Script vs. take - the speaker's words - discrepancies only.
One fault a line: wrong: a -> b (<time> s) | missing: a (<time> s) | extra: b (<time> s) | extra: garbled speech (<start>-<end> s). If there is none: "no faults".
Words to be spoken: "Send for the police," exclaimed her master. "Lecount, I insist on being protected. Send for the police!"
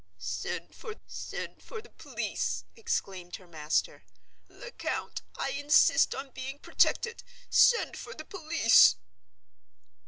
extra: send for (1.1 s)